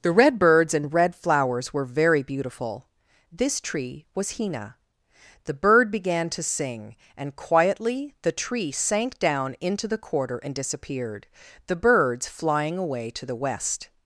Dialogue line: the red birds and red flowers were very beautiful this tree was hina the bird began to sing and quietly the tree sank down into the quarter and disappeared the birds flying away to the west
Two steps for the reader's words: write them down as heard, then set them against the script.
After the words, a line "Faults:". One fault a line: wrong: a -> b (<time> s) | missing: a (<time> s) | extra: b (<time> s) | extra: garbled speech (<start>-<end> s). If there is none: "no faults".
the red birds and red flowers were very beautiful this tree was hina the bird began to sing and quietly the tree sank down into the quarter and disappeared the birds flying away to the west
Faults:
no faults